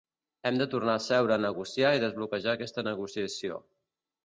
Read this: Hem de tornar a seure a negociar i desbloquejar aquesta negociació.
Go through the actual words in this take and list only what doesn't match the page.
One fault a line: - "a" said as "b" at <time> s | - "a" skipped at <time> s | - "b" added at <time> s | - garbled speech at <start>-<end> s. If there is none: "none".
none